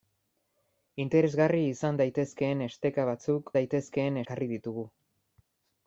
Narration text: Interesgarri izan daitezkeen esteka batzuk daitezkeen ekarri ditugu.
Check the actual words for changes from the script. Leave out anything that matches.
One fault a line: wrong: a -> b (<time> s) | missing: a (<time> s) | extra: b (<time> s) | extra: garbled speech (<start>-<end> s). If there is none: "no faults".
no faults